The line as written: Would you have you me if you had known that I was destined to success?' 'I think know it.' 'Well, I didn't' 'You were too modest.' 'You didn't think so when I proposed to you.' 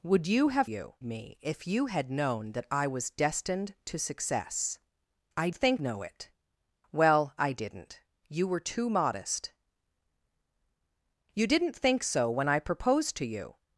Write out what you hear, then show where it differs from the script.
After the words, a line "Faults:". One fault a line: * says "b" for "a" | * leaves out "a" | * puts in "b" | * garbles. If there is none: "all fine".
Would you have you me if you had known that I was destined to success?' 'I think know it.' 'Well, I didn't' 'You were too modest.' 'You didn't think so when I proposed to you.'
Faults:
all fine